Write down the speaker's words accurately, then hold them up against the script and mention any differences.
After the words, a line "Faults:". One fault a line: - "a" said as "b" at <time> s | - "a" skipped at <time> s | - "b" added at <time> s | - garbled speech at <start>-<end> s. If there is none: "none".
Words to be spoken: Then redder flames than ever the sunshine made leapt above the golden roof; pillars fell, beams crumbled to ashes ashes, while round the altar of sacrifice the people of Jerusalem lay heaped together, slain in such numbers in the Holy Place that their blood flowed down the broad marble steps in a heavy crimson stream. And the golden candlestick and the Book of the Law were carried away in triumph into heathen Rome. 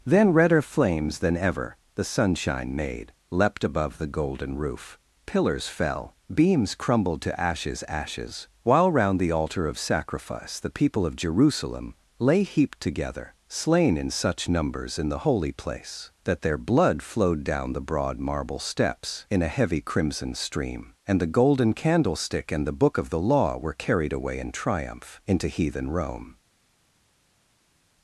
Then redder flames than ever the sunshine made leapt above the golden roof; pillars fell, beams crumbled to ashes ashes, while round the altar of sacrifice the people of Jerusalem lay heaped together, slain in such numbers in the Holy Place that their blood flowed down the broad marble steps in a heavy crimson stream. And the golden candlestick and the Book of the Law were carried away in triumph into heathen Rome.
Faults:
none